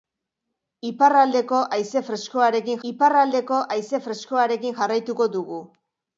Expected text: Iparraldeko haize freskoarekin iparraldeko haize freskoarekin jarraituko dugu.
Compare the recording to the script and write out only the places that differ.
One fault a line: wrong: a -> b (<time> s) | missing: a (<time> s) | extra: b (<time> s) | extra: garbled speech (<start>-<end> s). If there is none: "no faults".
no faults